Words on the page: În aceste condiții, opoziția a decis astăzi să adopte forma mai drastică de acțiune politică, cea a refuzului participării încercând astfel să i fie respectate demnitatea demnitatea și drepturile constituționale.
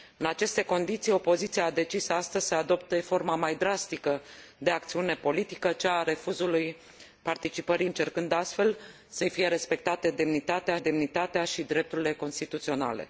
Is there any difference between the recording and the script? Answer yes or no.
no